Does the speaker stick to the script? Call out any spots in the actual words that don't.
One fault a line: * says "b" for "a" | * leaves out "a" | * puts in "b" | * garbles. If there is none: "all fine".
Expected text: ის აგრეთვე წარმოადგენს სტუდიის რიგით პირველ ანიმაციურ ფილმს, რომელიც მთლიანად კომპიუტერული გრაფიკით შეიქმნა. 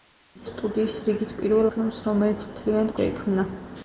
* leaves out "აგრეთვე წარმოადგენს"
* leaves out "ანიმაციურ"
* leaves out "კომპიუტერული გრაფიკით"